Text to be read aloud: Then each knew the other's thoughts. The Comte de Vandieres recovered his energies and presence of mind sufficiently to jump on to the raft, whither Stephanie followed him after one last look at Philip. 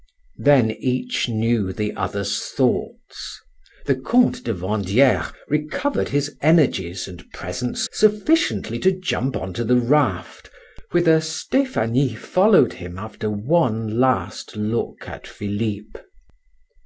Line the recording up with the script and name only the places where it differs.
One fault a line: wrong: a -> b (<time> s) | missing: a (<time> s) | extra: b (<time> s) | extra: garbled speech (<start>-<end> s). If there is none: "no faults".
missing: of mind (7.9 s)